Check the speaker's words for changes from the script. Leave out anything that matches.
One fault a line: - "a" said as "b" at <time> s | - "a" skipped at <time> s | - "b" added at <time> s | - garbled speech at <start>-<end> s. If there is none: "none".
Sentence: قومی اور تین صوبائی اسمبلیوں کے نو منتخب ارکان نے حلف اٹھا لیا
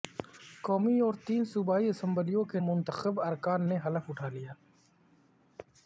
- "نو" skipped at 2.6 s